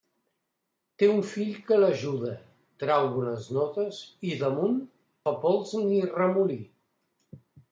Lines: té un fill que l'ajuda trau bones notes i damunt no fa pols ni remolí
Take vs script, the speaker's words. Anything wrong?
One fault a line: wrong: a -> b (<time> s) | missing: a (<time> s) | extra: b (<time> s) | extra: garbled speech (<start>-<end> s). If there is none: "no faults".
missing: no (4.8 s)